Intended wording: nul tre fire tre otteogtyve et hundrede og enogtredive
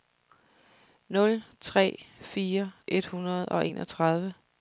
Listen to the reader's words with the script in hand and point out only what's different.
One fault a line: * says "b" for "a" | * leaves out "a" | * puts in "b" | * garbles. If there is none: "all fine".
* leaves out "tre otteogtyve"